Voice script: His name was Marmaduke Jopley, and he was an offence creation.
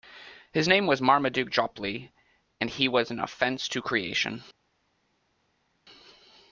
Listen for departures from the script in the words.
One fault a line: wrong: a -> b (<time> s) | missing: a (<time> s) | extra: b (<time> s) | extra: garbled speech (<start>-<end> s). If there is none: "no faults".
extra: to (3.7 s)